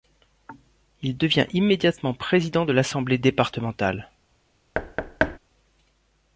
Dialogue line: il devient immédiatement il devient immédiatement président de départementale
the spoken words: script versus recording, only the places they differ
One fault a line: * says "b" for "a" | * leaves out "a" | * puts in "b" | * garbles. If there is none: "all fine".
* leaves out "il devient immédiatement"
* puts in "l'assemblée"